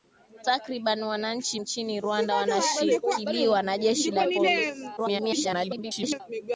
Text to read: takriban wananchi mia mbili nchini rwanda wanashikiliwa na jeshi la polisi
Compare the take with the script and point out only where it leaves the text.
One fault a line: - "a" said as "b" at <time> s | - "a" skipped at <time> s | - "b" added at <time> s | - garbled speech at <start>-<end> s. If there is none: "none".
- "mia mbili" skipped at 1.6 s
- garbled speech at 5.0-6.2 s